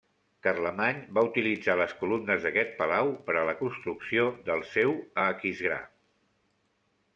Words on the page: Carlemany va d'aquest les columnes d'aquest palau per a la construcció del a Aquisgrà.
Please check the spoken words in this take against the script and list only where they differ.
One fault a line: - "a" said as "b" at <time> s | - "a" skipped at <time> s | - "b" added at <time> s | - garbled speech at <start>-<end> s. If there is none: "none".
- "d'aquest" said as "utilitzar" at 1.3 s
- "seu" added at 4.7 s